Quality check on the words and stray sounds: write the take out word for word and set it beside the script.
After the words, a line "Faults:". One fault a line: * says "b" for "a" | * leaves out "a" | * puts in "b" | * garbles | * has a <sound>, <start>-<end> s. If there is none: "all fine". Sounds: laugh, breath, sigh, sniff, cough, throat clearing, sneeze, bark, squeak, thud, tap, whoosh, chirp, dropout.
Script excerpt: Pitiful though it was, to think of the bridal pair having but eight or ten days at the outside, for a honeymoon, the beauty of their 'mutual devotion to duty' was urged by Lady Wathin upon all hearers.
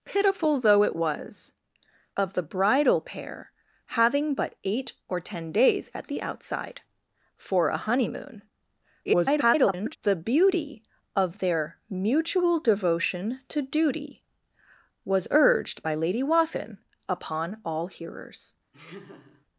Pitiful though it was, of the bridal pair having but eight or ten days at the outside, for a honeymoon, [garbled] the beauty of their 'mutual devotion to duty' was urged by Lady Wathin upon all hearers.
Faults:
* leaves out "to think"
* garbles
* has a laugh, 18.7-19.5 s